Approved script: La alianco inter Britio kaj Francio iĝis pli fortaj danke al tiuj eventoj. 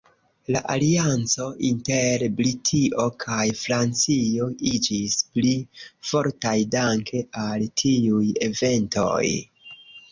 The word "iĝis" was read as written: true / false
true